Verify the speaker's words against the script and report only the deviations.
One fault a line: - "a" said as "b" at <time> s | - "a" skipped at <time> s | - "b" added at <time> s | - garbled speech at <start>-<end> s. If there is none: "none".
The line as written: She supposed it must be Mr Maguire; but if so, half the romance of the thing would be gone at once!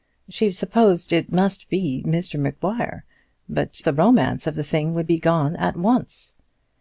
- "if so half" skipped at 3.8 s